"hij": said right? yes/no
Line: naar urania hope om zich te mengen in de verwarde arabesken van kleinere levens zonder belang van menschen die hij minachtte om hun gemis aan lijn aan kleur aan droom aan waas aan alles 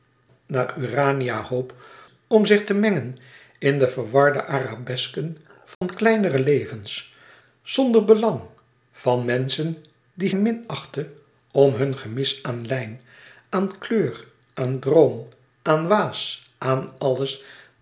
no